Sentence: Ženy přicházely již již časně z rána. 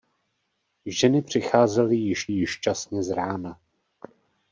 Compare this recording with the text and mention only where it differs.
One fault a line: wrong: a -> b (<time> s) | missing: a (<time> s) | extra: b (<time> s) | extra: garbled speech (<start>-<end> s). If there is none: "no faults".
no faults